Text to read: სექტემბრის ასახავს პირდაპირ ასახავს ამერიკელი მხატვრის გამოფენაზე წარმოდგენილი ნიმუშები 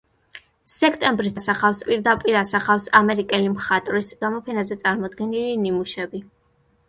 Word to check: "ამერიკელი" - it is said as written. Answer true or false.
true